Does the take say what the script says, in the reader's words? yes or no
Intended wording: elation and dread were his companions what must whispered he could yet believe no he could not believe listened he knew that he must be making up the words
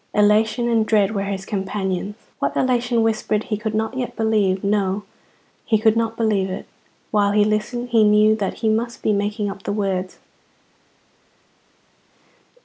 no